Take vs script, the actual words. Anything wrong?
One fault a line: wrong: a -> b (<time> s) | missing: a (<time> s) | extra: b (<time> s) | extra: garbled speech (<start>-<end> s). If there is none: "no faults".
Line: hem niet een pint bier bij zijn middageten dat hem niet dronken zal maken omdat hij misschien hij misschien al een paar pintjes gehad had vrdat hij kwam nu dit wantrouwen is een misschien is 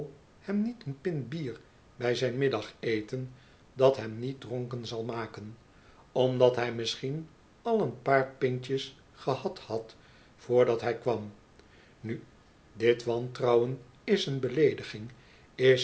missing: hij misschien (7.3 s)
wrong: misschien -> beleediging (14.4 s)